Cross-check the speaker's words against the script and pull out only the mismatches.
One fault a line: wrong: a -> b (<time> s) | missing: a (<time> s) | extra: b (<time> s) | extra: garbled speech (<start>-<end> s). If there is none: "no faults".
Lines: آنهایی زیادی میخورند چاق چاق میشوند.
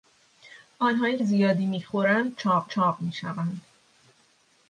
no faults